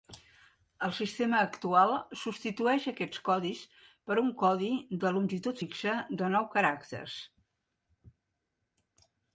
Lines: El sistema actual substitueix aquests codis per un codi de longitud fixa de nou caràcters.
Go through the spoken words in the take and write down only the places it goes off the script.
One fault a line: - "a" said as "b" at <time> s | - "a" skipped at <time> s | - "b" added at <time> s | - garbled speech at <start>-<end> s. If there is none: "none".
none